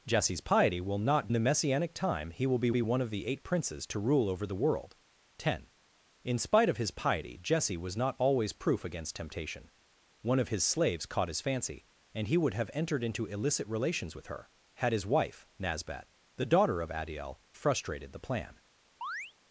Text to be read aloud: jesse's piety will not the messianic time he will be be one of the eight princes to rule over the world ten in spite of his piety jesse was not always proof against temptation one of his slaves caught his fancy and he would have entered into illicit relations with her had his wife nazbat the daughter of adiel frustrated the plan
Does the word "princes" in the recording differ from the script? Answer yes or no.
no